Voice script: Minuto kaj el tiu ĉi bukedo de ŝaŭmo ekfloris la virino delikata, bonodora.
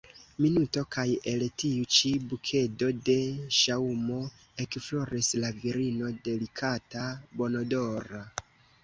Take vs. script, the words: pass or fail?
pass